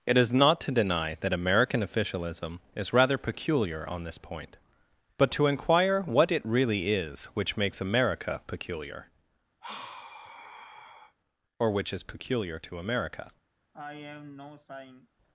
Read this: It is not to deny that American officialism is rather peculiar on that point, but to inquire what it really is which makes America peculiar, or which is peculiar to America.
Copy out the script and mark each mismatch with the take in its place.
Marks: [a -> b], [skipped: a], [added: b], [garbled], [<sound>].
It is not to deny that American officialism is rather peculiar on [that -> this] point, but to inquire what it really is which makes America peculiar, [sigh] or which is peculiar to America. [sigh]